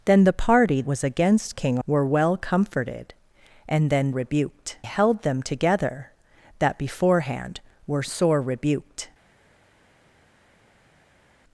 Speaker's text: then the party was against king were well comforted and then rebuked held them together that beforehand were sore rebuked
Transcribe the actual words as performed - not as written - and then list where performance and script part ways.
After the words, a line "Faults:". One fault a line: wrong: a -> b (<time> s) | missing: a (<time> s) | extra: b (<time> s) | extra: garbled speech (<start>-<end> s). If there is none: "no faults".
then the party was against king were well comforted and then rebuked held them together that beforehand were sore rebuked
Faults:
no faults